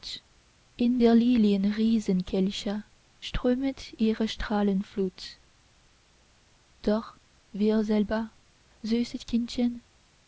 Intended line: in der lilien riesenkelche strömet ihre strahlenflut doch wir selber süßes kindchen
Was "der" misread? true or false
false